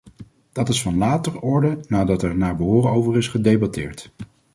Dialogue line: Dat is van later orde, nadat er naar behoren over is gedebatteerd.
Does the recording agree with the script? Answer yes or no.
yes